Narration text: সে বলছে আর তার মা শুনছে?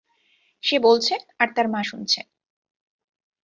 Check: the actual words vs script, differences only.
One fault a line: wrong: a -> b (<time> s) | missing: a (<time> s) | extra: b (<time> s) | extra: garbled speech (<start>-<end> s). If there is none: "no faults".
no faults